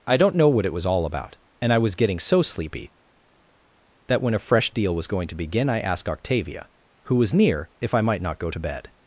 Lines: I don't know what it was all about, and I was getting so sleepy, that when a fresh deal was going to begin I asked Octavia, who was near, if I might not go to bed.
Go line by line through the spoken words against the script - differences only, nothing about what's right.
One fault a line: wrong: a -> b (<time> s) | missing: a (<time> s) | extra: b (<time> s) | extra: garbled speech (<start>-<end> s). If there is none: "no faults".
no faults